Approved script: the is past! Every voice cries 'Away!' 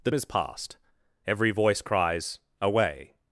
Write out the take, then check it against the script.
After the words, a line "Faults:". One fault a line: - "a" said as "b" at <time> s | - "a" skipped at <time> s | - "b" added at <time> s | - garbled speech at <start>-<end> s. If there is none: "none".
the is past! Every voice cries 'Away!'
Faults:
none